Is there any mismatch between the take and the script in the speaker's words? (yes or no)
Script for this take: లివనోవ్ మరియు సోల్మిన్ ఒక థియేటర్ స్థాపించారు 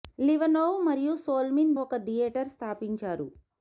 no